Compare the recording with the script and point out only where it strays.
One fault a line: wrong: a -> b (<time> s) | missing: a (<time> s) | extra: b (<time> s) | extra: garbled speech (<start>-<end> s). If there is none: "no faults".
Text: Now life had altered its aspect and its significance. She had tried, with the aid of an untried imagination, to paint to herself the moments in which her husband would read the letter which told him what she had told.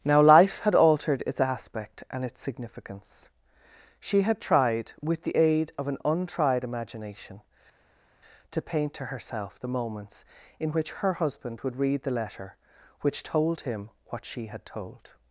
no faults